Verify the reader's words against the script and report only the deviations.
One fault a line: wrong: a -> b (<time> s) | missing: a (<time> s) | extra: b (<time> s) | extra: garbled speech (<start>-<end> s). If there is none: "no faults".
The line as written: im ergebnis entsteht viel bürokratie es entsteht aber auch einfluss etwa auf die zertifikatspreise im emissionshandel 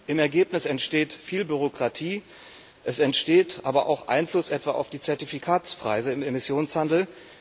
no faults